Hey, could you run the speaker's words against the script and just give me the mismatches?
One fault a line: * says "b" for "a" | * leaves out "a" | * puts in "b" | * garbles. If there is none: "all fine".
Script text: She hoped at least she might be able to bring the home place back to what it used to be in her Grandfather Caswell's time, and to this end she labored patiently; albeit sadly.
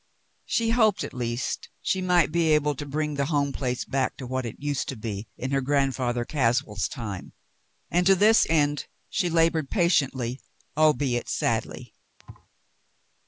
all fine